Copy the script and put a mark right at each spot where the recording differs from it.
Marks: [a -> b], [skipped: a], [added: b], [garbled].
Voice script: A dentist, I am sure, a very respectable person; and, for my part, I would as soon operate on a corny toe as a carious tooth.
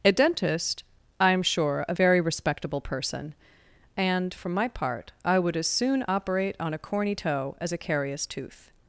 A dentist, I am sure, a very respectable person; and, for my part, I would as soon operate on a corny toe as a carious tooth.